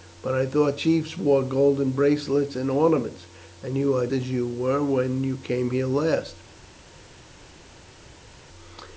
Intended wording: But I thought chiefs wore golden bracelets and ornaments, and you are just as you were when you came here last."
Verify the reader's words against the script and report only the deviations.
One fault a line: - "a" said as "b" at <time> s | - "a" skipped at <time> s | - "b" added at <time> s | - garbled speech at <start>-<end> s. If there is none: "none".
- "just" skipped at 4.1 s